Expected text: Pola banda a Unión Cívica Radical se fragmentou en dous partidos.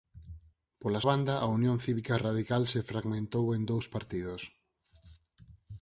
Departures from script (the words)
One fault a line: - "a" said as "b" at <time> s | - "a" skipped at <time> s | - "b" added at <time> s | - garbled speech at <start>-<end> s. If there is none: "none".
none